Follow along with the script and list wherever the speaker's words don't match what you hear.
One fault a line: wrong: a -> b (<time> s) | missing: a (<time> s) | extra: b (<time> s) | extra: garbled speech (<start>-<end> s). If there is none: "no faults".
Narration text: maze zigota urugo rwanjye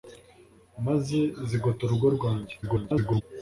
extra: garbled speech (2.6-3.2 s)